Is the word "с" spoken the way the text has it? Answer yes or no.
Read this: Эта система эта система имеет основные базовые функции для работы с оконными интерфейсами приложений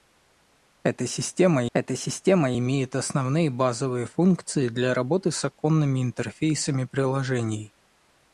yes